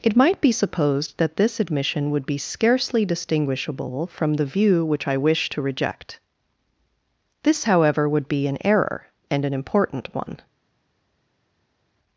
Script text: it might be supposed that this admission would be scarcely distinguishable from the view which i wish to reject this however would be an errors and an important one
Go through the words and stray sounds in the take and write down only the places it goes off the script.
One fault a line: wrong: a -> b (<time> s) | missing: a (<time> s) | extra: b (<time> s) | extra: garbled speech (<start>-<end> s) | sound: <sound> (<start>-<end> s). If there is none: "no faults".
wrong: errors -> error (8.6 s)